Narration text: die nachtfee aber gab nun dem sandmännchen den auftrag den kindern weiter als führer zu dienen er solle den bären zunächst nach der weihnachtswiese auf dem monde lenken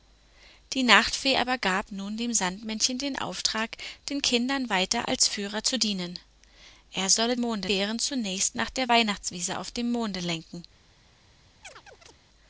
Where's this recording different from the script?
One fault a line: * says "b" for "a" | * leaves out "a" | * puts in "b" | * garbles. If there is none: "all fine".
* says "monde" for "den"